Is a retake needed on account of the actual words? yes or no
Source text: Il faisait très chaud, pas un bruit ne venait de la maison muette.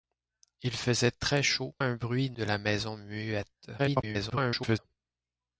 yes